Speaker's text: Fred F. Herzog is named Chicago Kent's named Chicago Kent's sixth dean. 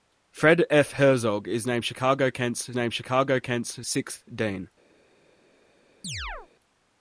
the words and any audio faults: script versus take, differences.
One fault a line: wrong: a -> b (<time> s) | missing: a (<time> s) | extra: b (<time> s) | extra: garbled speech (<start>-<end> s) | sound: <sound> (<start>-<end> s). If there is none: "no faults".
sound: chirp (6.0-6.5 s)